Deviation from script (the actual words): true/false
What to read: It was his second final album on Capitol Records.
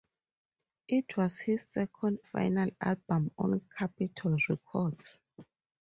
false